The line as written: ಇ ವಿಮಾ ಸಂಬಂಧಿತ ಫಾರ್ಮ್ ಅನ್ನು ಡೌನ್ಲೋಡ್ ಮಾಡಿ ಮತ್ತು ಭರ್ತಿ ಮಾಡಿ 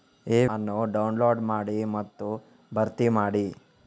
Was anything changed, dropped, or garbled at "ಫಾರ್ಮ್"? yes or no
yes